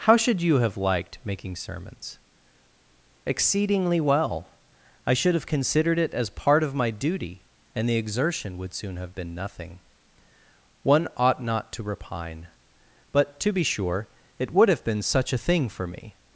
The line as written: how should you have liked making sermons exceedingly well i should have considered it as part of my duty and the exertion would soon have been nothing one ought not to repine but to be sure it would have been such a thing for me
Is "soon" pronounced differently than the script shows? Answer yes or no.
no